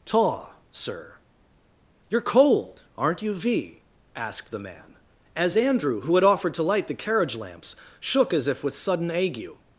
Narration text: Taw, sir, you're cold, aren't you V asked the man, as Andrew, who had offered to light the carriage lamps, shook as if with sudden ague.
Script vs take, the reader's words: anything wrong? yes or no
no